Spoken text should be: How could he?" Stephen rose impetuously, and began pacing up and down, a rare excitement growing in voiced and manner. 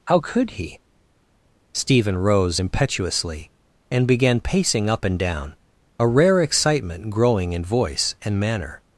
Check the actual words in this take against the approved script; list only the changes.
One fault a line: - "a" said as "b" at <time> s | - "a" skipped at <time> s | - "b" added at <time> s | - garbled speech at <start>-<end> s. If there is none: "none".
- "voiced" said as "voice" at 7.6 s